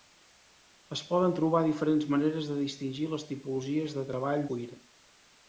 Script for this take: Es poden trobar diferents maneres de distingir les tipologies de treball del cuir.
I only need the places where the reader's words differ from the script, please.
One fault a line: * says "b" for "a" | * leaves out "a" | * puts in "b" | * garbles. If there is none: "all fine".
* leaves out "del"